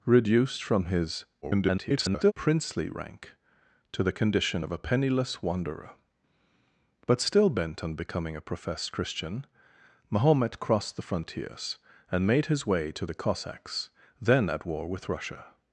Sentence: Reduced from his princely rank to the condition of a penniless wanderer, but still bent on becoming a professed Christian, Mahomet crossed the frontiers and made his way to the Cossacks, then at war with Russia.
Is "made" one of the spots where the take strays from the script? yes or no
no